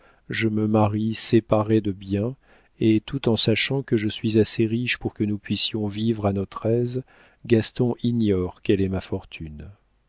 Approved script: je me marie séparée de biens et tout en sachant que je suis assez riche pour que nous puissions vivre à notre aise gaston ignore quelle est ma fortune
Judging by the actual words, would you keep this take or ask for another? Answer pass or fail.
pass